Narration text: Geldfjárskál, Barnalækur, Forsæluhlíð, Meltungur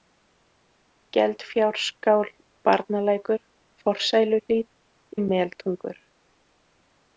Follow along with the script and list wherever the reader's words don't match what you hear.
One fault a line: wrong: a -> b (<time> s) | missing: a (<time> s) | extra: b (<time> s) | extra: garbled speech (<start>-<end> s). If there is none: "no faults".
no faults